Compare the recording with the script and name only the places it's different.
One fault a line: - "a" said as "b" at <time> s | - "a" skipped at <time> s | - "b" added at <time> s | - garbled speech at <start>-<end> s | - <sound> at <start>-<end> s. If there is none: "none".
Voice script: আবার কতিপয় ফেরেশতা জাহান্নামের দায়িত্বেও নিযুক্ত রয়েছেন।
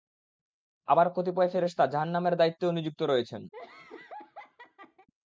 - laugh at 3.5-5.1 s